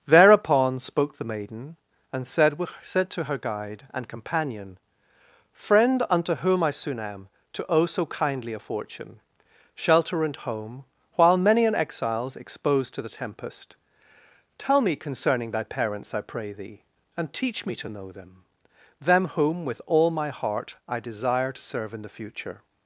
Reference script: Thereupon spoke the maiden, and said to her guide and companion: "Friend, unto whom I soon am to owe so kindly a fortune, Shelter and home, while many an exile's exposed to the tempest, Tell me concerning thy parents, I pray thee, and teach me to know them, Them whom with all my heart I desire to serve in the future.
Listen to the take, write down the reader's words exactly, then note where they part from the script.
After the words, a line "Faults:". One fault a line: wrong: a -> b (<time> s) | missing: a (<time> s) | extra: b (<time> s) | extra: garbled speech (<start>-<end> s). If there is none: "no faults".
Thereupon spoke the maiden, and said said to her guide and companion: "Friend, unto whom I soon am to owe so kindly a fortune, Shelter and home, while many an exile's exposed to the tempest, Tell me concerning thy parents, I pray thee, and teach me to know them, Them whom with all my heart I desire to serve in the future.
Faults:
extra: said (2.8 s)